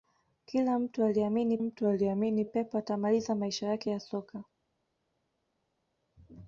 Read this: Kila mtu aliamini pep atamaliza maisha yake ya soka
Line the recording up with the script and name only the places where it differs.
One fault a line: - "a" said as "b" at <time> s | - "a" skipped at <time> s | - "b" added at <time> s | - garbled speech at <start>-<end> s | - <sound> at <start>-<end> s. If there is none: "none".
- "mtu aliamini" added at 1.6 s